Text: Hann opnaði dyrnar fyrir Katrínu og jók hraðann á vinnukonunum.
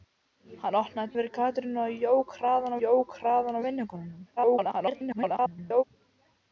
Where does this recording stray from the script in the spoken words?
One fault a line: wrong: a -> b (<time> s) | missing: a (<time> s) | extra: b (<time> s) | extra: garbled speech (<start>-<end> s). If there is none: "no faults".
missing: dyrnar (1.1 s)
extra: jók hraðann (2.8 s)
extra: garbled speech (4.4-5.8 s)